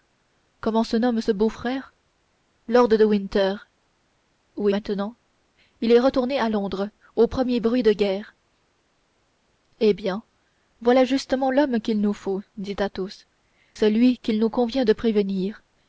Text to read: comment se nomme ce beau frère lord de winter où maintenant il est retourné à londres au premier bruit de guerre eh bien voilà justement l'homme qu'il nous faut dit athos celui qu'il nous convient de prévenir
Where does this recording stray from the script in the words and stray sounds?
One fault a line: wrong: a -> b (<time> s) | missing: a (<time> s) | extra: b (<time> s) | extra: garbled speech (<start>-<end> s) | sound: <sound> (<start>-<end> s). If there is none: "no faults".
no faults